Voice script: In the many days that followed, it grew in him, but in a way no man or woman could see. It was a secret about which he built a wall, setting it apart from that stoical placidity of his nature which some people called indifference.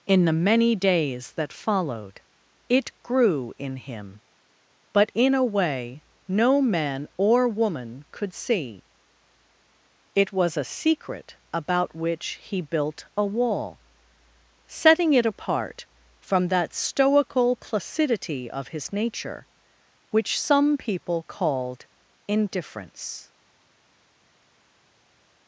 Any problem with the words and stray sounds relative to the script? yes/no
no